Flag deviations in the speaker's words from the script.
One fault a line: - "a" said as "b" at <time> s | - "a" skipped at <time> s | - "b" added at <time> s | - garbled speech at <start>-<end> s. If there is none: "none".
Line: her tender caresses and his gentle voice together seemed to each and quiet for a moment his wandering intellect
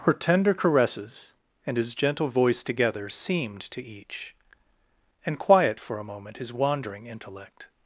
none